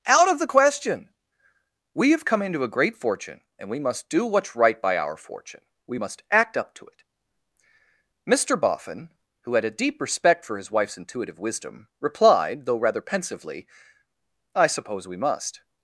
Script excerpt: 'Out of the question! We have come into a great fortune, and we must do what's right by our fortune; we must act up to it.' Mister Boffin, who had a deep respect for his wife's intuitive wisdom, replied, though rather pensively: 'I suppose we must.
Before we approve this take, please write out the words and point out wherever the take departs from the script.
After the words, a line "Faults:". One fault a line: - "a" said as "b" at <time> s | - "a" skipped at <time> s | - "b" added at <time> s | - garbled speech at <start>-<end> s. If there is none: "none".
'Out of the question! We have come into a great fortune, and we must do what's right by our fortune; we must act up to it.' Mister Boffin, who had a deep respect for his wife's intuitive wisdom, replied, though rather pensively: 'I suppose we must.
Faults:
none